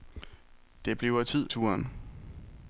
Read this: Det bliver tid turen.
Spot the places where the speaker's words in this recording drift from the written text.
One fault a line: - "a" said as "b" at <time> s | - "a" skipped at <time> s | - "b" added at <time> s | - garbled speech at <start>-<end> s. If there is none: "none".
none